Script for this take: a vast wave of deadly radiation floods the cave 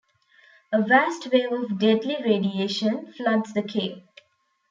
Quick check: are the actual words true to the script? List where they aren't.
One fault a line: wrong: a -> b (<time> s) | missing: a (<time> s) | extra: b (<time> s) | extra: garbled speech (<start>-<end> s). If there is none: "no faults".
no faults